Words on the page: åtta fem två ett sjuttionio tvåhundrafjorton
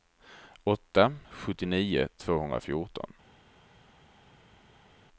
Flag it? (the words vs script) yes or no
yes